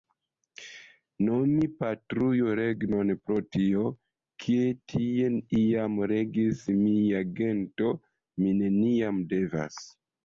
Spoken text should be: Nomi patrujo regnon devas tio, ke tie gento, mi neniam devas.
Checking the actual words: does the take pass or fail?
fail